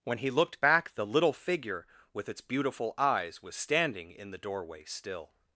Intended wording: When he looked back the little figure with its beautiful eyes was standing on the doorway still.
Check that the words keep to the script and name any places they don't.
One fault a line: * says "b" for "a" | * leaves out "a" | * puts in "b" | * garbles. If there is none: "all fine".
* says "in" for "on"